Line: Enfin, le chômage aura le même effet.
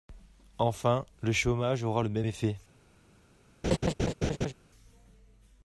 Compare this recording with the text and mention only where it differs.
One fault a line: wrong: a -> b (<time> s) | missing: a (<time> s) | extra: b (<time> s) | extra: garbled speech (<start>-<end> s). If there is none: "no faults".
no faults